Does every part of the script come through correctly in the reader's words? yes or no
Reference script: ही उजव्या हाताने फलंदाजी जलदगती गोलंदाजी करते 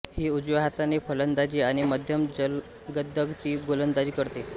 no